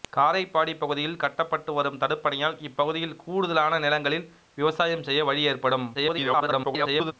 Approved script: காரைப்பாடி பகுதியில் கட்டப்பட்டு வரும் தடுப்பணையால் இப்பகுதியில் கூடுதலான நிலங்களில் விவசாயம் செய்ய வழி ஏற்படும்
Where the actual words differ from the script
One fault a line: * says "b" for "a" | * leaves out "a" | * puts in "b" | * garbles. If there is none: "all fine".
* garbles